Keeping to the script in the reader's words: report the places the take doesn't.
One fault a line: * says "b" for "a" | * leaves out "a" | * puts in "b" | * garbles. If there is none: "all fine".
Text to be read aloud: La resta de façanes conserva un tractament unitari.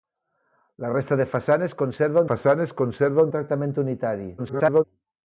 * puts in "façanes conserva"
* garbles